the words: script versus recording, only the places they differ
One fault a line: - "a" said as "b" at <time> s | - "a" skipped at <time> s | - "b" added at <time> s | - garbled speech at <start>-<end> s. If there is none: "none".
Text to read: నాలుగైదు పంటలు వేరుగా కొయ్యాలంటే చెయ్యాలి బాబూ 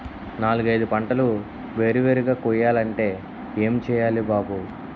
- "వేరు" added at 1.8 s
- "ఏం" added at 3.6 s